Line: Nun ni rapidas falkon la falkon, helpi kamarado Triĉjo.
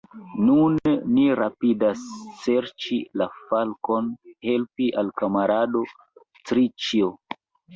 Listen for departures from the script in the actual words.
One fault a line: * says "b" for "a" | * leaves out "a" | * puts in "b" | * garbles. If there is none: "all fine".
* says "serĉi" for "falkon"
* puts in "al"